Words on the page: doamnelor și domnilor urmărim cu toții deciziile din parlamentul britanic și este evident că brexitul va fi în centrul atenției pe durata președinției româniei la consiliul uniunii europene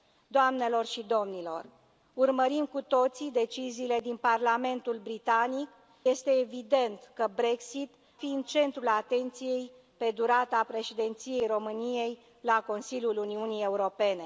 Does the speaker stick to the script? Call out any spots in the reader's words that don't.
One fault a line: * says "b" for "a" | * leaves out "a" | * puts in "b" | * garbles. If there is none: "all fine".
* leaves out "și"
* leaves out "va"